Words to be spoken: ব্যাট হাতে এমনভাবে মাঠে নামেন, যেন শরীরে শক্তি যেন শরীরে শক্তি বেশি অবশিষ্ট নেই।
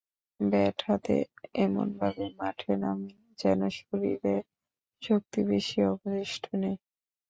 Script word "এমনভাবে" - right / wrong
right